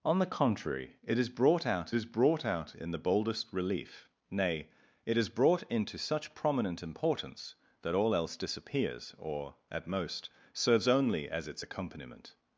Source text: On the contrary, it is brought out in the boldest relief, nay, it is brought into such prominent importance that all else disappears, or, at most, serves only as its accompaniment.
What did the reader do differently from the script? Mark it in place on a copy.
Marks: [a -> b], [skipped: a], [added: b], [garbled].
On the contrary, it is brought out [added: is brought out] in the boldest relief, nay, it is brought into such prominent importance that all else disappears, or, at most, serves only as its accompaniment.